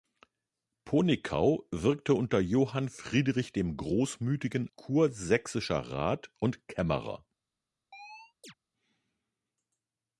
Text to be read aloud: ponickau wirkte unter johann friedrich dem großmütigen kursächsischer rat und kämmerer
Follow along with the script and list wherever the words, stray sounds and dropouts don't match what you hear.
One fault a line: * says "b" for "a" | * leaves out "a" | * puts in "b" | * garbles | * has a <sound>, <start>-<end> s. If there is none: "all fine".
* has a chirp, 7.9-8.5 s